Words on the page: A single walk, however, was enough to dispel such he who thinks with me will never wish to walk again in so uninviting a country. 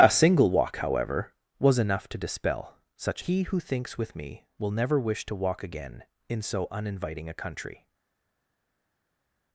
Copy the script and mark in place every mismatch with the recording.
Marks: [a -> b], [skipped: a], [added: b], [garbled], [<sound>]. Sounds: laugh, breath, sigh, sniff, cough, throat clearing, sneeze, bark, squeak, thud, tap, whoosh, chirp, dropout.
A single walk, however, was enough to dispel such he who thinks with me will never wish to walk again in so uninviting a country.